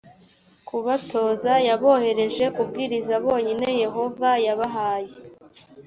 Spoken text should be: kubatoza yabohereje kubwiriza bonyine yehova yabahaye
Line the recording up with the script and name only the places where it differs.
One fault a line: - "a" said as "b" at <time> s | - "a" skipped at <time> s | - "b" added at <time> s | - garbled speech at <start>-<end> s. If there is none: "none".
none